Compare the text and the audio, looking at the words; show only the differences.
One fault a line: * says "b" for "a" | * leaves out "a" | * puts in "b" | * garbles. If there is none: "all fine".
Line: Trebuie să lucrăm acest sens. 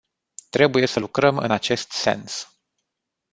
* puts in "în"